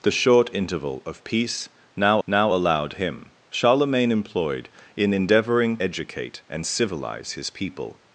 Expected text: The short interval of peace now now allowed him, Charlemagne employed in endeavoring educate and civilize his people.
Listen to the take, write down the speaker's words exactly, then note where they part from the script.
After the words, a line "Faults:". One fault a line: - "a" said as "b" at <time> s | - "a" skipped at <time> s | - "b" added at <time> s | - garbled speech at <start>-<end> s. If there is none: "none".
The short interval of peace now now allowed him, Charlemagne employed in endeavoring educate and civilize his people.
Faults:
none